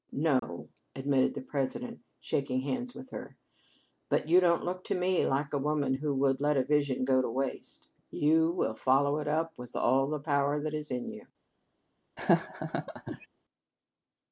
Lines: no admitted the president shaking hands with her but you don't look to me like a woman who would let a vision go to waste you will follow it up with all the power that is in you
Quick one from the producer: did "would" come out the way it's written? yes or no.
yes